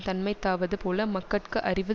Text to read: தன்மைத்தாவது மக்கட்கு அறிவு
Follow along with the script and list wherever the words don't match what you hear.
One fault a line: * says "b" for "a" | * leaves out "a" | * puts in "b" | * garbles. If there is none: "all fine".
* puts in "போல"